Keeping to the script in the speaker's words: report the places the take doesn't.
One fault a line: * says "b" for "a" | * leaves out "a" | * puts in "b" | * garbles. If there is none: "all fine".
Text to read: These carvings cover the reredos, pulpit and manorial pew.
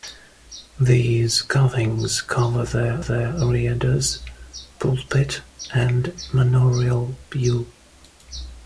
* puts in "the"